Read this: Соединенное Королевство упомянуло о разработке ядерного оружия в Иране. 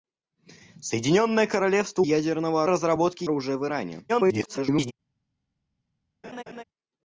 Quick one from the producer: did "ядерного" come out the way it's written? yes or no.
no